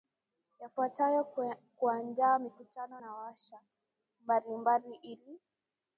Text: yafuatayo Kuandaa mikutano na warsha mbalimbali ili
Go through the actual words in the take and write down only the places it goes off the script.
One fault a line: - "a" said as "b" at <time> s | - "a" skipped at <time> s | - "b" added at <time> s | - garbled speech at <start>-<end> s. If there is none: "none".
none